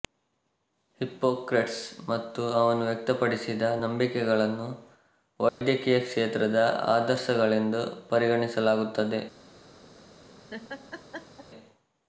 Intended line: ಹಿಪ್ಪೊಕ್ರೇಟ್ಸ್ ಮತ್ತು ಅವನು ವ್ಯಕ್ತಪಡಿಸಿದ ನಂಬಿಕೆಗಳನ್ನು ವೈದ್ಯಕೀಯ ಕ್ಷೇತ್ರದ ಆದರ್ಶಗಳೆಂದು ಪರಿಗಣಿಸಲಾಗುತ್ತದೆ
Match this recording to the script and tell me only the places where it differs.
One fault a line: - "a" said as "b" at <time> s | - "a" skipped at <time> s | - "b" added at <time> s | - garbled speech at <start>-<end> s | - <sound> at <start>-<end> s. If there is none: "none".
- dropout at 5.5-5.6 s
- laugh at 10.5-11.5 s